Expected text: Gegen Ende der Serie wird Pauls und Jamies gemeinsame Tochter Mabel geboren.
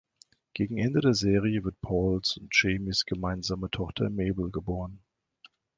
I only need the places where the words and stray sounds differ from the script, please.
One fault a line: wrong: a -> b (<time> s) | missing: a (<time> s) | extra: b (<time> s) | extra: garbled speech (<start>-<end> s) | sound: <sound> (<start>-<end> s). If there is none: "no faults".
no faults